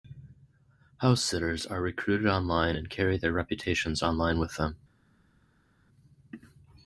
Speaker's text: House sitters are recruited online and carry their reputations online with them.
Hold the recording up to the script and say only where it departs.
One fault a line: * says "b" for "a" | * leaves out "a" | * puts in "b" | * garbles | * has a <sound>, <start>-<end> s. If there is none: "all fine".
all fine